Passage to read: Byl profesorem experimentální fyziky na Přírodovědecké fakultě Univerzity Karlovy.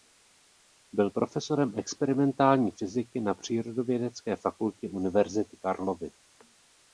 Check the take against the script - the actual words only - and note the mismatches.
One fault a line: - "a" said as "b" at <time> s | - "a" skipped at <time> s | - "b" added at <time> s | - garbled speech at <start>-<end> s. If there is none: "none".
none